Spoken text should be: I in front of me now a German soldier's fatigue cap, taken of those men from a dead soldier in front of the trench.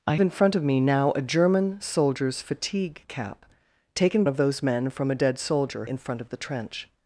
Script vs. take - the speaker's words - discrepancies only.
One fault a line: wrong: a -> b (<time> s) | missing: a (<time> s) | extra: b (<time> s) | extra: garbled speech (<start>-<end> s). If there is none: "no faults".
no faults